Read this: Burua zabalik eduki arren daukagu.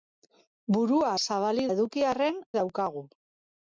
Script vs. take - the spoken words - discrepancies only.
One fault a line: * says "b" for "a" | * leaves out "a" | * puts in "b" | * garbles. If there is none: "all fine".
all fine